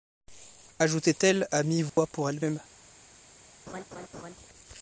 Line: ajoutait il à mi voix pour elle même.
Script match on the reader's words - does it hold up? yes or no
no